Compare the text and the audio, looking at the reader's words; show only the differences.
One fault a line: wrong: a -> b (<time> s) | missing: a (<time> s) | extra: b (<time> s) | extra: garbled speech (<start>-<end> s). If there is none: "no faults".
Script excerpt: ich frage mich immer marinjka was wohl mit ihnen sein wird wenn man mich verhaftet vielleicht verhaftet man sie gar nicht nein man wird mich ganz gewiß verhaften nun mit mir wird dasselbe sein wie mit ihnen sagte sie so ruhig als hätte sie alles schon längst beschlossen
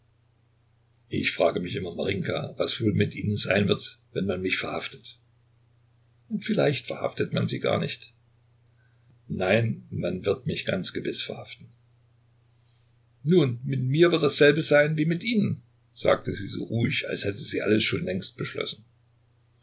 no faults